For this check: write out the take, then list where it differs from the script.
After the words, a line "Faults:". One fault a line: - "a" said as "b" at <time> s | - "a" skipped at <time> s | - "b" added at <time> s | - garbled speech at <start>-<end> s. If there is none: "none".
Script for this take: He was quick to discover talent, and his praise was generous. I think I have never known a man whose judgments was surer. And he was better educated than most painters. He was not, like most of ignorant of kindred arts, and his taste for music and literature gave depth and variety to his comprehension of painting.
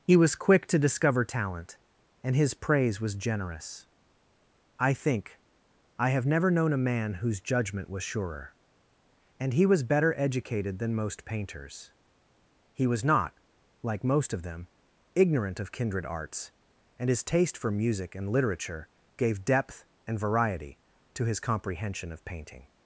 He was quick to discover talent, and his praise was generous. I think I have never known a man whose judgment was surer. And he was better educated than most painters. He was not, like most of them, ignorant of kindred arts, and his taste for music and literature gave depth and variety to his comprehension of painting.
Faults:
- "judgments" said as "judgment" at 7.4 s
- "them" added at 14.4 s